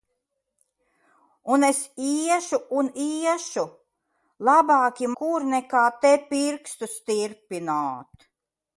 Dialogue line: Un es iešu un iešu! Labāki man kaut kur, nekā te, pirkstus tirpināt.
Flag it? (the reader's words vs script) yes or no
yes